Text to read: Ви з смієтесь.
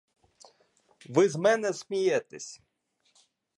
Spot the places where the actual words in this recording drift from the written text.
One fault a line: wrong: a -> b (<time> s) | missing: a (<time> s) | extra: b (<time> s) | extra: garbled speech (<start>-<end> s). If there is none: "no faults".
extra: мене (1.3 s)